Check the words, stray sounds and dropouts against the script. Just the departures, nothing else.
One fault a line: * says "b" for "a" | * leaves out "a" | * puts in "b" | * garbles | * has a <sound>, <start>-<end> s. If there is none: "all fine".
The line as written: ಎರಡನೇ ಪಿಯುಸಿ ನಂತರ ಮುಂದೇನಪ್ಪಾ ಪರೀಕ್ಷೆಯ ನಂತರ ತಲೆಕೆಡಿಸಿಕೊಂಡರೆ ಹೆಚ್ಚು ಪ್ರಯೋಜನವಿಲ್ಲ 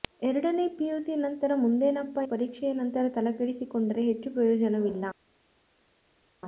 all fine